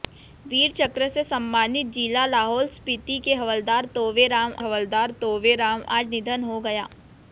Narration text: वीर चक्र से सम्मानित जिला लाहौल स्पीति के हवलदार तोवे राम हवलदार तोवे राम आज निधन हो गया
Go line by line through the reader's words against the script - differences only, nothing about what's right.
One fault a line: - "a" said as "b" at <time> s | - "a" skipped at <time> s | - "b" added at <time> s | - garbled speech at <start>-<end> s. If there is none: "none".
none